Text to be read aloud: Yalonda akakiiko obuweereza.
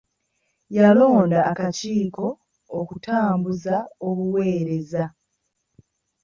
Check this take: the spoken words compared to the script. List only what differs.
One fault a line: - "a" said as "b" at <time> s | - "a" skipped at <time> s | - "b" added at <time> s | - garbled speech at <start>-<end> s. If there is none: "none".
- "okutambuza" added at 2.8 s